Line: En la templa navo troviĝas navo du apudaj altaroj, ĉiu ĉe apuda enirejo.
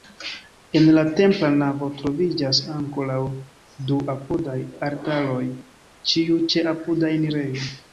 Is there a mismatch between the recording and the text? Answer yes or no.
yes